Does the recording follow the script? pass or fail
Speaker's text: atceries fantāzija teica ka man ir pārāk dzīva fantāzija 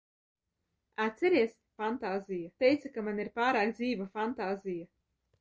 pass